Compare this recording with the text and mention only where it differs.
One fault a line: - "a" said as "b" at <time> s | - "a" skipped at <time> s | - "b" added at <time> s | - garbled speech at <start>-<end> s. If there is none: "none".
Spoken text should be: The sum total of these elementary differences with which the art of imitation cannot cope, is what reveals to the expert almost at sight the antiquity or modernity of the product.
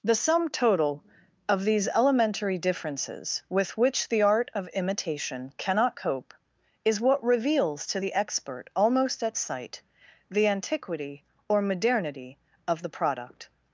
none